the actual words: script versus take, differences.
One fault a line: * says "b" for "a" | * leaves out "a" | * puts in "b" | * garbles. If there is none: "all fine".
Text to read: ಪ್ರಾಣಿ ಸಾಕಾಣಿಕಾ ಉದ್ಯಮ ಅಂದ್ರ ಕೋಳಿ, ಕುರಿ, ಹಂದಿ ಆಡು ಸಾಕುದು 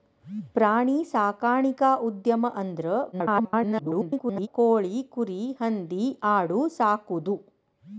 * garbles